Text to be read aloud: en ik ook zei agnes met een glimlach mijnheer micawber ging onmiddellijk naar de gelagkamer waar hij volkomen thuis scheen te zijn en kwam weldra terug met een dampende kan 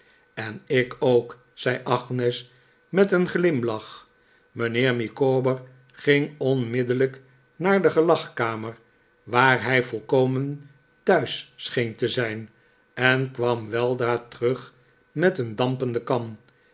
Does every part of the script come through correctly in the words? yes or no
yes